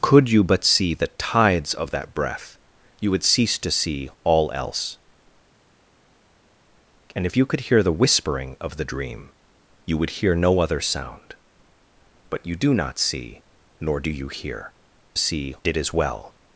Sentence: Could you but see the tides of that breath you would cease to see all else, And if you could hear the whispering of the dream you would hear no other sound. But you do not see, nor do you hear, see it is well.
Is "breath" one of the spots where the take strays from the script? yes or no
no